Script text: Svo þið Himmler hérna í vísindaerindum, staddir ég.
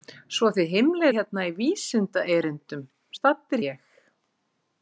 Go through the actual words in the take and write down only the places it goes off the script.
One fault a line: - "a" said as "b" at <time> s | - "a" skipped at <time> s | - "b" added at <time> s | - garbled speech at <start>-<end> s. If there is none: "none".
none